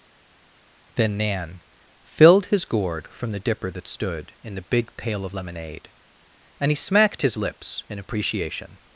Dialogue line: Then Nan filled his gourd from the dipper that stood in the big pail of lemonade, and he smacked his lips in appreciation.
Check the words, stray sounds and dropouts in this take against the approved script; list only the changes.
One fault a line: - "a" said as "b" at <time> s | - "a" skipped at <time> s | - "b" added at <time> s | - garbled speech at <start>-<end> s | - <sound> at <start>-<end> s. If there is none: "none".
none